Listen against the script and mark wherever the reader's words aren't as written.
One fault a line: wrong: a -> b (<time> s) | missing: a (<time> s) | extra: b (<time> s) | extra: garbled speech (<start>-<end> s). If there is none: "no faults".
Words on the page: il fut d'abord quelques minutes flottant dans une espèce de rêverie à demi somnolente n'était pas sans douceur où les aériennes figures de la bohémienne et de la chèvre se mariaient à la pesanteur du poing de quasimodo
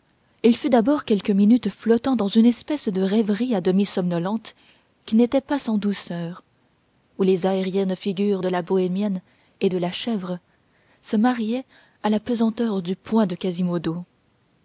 extra: qui (5.0 s)